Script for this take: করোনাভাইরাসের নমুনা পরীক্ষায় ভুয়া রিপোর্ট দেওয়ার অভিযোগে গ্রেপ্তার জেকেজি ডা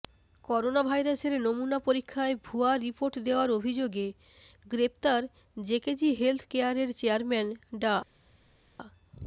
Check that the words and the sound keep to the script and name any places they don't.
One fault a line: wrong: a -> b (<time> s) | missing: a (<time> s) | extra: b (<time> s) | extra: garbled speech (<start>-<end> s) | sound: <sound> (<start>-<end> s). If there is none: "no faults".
extra: হেলথ কেয়ারের চেয়ারম্যান (6.2 s)